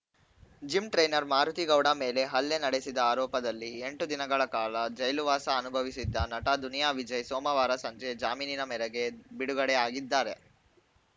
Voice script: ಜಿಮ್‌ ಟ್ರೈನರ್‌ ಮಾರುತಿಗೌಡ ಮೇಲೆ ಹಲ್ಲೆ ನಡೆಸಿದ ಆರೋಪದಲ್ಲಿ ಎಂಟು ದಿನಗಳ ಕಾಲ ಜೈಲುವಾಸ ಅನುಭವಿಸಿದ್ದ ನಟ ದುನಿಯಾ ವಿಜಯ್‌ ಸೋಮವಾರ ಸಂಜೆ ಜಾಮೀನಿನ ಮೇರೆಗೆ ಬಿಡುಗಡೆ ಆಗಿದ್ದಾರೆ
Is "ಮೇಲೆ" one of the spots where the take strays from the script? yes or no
no